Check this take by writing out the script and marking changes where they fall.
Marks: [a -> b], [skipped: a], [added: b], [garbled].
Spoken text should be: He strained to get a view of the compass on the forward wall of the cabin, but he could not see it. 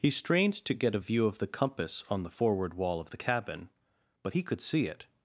He strained to get a view of the compass on the forward wall of the cabin, but he could [skipped: not] see it.